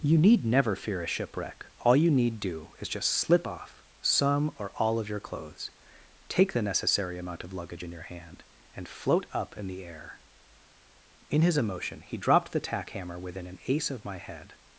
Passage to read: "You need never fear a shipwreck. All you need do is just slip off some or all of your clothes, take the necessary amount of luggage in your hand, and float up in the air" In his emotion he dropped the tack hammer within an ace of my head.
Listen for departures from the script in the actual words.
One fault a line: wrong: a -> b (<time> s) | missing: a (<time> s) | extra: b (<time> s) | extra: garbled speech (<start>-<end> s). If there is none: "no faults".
no faults